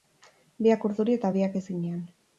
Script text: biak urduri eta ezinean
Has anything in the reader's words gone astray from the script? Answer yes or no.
yes